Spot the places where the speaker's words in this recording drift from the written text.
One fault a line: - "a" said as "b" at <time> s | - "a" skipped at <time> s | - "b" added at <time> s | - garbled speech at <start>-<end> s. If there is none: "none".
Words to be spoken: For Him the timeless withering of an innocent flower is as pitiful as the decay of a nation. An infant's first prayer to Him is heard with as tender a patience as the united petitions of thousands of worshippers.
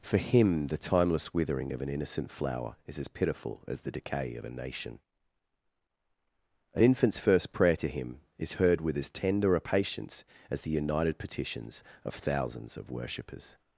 none